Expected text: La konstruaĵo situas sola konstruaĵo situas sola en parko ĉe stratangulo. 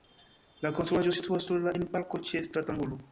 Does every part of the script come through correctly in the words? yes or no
no